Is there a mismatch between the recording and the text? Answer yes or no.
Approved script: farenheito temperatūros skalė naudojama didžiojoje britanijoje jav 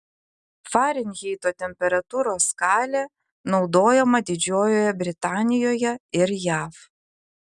yes